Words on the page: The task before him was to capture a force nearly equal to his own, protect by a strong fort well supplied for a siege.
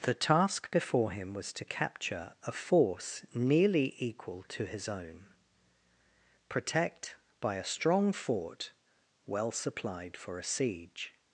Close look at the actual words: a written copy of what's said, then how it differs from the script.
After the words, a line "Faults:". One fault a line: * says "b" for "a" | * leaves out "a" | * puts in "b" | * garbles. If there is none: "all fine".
The task before him was to capture a force nearly equal to his own, protect by a strong fort well supplied for a siege.
Faults:
all fine